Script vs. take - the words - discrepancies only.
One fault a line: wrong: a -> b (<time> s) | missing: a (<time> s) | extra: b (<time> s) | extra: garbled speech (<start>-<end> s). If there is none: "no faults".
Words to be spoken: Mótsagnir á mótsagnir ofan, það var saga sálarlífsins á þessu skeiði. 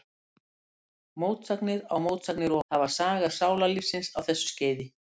missing: ofan (2.6 s)